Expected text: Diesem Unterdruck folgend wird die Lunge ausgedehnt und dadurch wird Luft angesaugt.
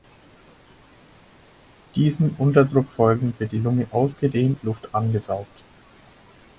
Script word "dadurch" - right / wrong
wrong